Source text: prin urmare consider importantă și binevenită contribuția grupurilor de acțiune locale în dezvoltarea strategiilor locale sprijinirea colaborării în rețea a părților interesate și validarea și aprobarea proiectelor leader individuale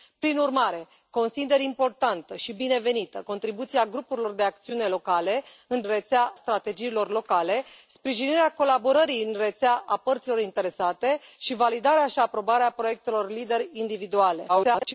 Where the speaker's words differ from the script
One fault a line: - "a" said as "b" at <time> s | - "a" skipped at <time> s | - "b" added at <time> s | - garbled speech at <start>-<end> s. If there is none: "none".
- "dezvoltarea" said as "rețea" at 5.8 s
- garbled speech at 14.5-14.9 s